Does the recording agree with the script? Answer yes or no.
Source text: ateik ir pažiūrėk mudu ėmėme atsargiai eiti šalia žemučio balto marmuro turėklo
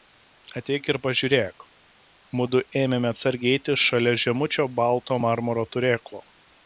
yes